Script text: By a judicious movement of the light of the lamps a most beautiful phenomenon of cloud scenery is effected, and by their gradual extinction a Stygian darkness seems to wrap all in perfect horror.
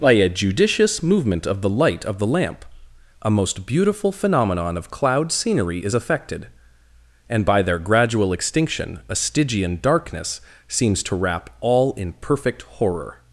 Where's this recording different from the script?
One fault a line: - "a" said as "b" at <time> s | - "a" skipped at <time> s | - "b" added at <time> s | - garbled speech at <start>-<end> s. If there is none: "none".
- "lamps" said as "lamp" at 2.2 s